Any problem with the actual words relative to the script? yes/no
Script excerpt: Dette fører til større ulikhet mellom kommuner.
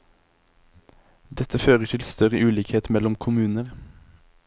no